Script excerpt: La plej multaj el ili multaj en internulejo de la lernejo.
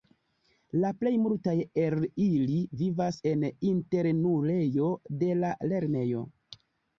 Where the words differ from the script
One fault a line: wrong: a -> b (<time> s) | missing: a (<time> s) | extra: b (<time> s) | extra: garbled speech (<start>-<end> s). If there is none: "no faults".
wrong: multaj -> vivas (2.8 s)